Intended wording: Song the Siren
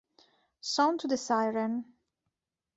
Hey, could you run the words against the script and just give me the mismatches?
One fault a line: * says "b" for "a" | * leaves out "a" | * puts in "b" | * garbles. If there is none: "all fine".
* puts in "to"